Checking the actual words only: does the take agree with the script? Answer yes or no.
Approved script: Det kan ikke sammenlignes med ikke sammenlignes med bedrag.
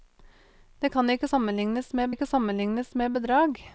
yes